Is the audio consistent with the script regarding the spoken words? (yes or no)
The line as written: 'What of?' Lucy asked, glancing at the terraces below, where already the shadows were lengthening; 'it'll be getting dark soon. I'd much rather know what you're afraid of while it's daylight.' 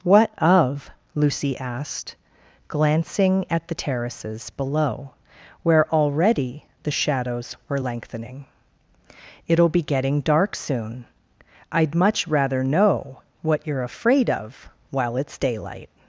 yes